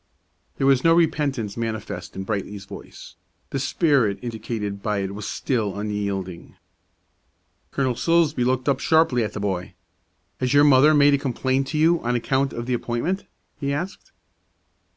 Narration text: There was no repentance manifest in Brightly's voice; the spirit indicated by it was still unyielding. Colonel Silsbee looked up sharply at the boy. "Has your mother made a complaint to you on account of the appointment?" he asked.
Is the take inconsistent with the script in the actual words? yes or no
no